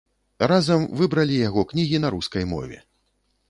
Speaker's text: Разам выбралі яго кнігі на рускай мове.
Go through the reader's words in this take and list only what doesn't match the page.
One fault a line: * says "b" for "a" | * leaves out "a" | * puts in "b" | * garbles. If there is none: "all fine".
all fine